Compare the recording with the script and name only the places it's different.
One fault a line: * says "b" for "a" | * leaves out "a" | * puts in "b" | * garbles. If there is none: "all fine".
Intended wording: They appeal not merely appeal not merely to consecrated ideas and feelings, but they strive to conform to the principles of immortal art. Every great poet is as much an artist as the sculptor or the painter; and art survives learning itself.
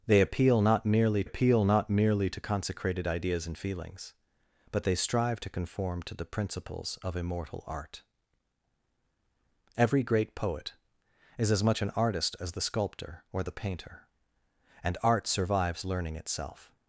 all fine